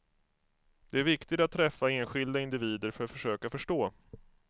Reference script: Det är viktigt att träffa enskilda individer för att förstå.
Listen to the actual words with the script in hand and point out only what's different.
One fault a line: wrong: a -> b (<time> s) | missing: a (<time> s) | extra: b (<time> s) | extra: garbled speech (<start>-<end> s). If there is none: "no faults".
extra: försöka (3.1 s)